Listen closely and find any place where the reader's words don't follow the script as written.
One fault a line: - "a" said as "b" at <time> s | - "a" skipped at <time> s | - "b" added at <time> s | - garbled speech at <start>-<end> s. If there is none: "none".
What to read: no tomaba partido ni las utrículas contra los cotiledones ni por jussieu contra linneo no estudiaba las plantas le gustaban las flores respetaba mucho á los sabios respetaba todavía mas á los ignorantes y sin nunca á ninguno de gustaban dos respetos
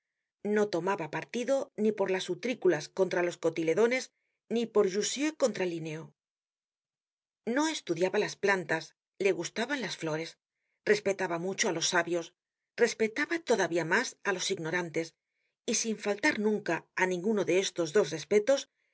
- "por" added at 1.9 s
- "faltar" added at 16.1 s
- "gustaban" said as "estos" at 17.6 s